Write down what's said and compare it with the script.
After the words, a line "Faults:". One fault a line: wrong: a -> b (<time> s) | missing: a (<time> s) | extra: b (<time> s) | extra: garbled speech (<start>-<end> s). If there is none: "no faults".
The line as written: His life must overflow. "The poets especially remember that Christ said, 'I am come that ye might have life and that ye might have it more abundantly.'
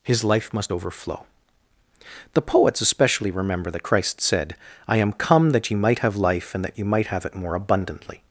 His life must overflow. "The poets especially remember that Christ said, 'I am come that ye might have life and that ye might have it more abundantly.'
Faults:
no faults